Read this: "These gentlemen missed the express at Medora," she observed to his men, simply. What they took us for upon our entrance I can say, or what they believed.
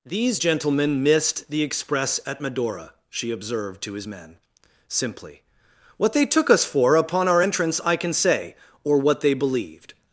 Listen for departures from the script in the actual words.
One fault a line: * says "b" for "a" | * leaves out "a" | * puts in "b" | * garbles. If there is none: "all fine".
all fine